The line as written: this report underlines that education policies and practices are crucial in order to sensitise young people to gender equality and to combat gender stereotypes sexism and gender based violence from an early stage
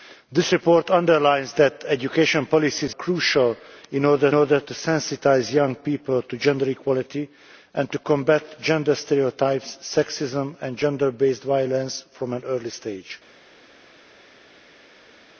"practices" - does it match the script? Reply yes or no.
no